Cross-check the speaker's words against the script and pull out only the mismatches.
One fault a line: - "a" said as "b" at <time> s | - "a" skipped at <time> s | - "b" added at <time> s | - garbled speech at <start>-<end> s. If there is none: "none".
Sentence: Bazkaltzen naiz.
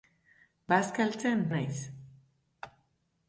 none